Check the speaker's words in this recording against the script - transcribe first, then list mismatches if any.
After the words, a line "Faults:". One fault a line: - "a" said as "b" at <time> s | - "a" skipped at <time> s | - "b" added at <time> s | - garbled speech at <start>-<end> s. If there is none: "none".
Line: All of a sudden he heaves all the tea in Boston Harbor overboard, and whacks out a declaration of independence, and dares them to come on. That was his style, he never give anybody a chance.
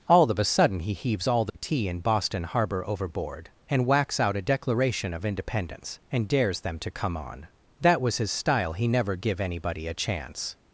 All of a sudden he heaves all the tea in Boston Harbor overboard, and whacks out a declaration of independence, and dares them to come on. That was his style, he never give anybody a chance.
Faults:
none